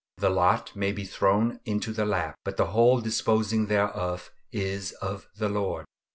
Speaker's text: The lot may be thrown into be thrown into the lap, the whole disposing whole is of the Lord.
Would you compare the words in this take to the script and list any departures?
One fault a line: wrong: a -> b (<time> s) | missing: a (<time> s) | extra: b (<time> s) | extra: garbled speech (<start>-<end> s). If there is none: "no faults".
missing: be thrown into (1.9 s)
extra: but (2.4 s)
wrong: whole -> thereof (3.7 s)